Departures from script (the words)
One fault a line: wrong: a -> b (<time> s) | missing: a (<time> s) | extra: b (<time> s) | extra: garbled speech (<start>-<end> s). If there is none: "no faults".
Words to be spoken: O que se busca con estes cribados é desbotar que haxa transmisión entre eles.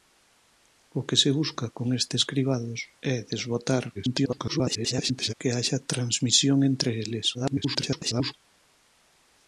extra: garbled speech (3.9-5.3 s)
extra: garbled speech (7.3-8.3 s)